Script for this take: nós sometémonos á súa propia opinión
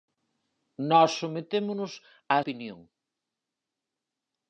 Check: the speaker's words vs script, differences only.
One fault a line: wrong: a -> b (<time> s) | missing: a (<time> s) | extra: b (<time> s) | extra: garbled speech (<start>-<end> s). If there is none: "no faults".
missing: súa propia (2.4 s)